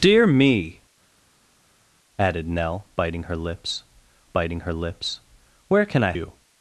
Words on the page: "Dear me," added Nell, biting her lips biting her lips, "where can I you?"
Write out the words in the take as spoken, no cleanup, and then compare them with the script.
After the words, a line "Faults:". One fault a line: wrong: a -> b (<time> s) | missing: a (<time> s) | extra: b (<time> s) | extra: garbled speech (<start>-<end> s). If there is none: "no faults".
"Dear me," added Nell, biting her lips biting her lips, "where can I you?"
Faults:
no faults